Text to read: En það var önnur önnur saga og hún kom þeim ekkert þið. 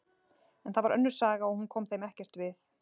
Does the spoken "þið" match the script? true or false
false